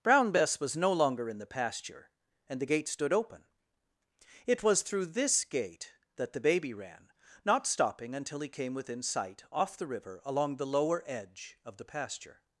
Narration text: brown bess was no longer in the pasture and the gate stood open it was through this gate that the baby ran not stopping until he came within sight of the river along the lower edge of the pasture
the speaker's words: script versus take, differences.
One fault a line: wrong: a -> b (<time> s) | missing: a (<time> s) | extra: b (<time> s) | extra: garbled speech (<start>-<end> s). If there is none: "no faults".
wrong: of -> off (9.5 s)